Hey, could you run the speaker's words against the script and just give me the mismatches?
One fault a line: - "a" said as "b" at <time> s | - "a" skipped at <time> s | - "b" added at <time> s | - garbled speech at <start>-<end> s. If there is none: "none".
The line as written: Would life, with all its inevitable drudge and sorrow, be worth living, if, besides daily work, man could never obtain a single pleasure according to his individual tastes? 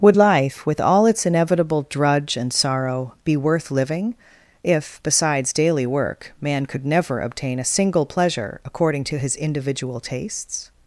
none